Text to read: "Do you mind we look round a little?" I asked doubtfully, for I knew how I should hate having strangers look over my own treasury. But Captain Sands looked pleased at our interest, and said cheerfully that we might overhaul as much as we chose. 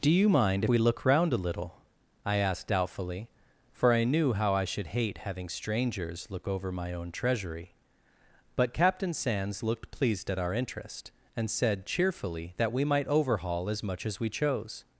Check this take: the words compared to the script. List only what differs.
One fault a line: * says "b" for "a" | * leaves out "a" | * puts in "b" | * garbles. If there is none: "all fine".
all fine